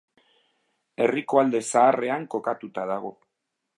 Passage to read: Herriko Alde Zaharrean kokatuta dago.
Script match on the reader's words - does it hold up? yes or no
yes